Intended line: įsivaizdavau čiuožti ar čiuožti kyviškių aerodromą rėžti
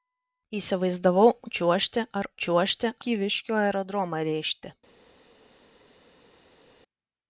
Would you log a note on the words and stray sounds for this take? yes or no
no